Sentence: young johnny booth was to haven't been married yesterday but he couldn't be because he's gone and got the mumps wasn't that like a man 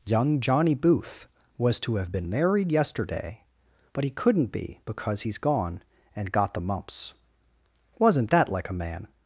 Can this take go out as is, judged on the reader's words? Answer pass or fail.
fail